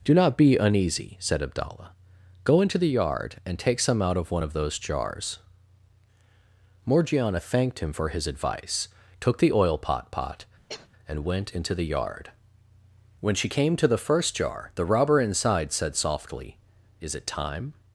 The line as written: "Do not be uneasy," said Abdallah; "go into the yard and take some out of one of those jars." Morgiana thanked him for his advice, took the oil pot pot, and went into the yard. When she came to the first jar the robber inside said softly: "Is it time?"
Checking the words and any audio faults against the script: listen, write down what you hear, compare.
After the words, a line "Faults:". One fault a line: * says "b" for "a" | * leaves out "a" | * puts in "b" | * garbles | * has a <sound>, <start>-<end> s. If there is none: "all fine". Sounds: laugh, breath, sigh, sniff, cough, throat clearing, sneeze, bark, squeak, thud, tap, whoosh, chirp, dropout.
"Do not be uneasy," said Abdallah; "go into the yard and take some out of one of those jars." Morgiana thanked him for his advice, took the oil pot pot, and went into the yard. When she came to the first jar the robber inside said softly: "Is it time?"
Faults:
* has a cough, 10.7-10.9 s